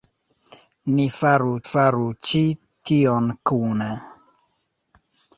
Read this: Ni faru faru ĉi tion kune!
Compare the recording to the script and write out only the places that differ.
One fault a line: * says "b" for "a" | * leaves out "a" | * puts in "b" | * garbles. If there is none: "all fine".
all fine